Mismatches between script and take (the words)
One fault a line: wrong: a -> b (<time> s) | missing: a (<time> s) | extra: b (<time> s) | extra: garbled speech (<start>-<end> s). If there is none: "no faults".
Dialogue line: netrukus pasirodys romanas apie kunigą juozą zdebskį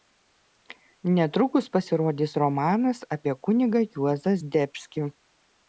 no faults